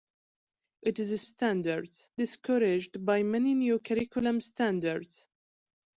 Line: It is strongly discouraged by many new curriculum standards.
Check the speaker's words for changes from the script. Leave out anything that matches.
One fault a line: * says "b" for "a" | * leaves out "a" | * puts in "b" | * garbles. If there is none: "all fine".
* says "standards" for "strongly"